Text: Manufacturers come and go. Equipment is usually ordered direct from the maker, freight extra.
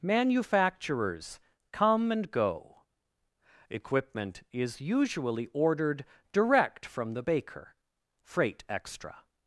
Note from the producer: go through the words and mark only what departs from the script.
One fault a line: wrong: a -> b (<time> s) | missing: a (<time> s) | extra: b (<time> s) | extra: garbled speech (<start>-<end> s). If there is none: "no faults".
wrong: maker -> baker (7.2 s)